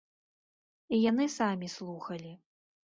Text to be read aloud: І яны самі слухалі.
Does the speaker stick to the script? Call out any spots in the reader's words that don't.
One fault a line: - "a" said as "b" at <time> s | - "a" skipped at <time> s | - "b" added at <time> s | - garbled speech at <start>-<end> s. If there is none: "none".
none